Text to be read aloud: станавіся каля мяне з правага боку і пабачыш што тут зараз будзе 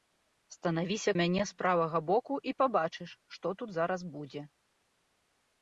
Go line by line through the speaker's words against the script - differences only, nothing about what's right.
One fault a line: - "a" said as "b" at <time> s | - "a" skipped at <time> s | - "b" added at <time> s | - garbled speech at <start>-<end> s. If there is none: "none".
- "каля" skipped at 1.1 s